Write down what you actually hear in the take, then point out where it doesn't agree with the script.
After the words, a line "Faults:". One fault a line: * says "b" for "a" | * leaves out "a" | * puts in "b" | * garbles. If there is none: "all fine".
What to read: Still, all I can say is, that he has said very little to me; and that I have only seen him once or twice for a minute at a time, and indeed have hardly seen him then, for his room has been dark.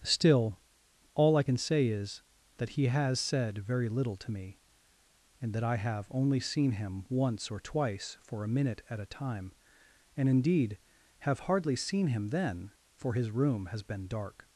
Still, all I can say is, that he has said very little to me; and that I have only seen him once or twice for a minute at a time, and indeed have hardly seen him then, for his room has been dark.
Faults:
all fine